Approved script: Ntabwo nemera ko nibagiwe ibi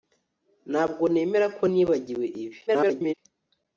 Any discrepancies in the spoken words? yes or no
yes